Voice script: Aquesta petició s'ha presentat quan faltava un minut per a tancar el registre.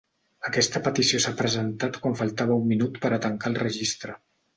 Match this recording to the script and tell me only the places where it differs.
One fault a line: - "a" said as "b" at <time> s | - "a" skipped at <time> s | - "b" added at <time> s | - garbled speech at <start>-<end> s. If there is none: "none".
none